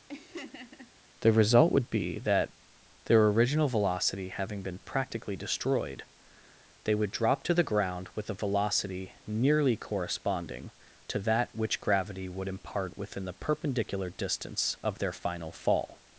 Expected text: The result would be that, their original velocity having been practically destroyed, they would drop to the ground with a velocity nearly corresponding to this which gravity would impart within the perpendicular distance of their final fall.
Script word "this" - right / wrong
wrong